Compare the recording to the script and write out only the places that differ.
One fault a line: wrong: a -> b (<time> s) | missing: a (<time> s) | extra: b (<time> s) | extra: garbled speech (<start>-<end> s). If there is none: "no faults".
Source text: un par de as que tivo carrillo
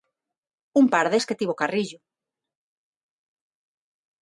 no faults